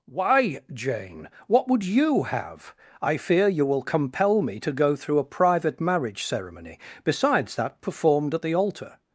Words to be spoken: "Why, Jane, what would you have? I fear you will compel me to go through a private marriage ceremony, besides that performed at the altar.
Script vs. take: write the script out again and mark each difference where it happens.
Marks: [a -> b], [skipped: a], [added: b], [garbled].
"Why, Jane, what would you have? I fear you will compel me to go through a private marriage ceremony, besides that performed at the altar.